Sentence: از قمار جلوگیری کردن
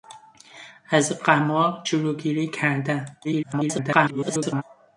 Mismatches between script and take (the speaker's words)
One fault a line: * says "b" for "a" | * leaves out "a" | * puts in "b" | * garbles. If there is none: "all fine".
* garbles